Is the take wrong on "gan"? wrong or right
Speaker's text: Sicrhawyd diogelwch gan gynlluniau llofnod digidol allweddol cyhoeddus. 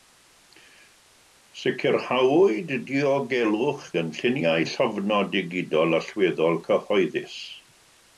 wrong